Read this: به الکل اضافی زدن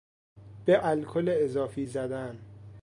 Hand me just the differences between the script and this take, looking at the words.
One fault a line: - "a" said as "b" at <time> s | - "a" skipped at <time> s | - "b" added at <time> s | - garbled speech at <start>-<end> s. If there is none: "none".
none